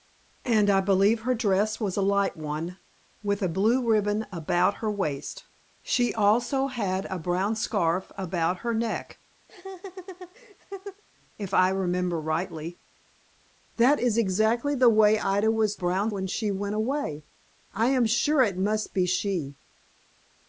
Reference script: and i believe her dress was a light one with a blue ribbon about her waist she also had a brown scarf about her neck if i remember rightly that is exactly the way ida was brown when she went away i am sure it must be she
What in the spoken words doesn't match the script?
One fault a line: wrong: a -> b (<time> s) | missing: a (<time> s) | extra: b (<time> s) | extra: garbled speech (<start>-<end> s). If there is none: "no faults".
no faults